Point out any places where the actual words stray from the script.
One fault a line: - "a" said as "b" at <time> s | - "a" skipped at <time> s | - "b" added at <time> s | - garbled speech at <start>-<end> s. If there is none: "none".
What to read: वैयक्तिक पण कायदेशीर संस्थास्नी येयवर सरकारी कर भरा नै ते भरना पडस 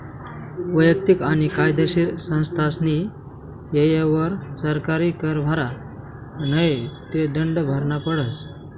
- "पण" said as "आणि" at 1.2 s
- "दंड" added at 7.3 s